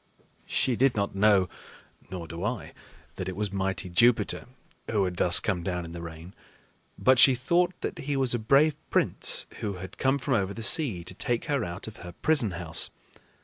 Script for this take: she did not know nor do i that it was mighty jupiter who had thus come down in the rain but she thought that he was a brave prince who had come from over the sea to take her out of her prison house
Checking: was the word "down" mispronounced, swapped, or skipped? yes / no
no